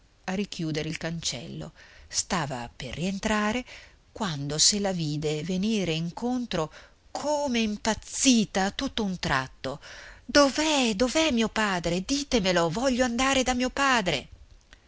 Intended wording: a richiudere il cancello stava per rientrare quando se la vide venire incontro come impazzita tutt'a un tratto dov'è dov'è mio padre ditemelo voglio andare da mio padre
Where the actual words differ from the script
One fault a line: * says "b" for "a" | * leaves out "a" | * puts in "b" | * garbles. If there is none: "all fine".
all fine